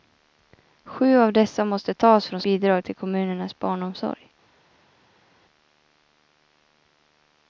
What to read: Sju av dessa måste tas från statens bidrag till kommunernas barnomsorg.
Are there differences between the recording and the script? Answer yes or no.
yes